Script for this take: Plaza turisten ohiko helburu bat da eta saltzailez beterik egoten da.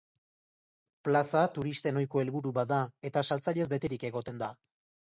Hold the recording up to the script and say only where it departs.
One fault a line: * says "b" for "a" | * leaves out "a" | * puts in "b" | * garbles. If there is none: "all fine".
all fine